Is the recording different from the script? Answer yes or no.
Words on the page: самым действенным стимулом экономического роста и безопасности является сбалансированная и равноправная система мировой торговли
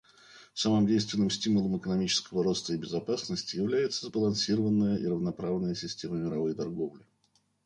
no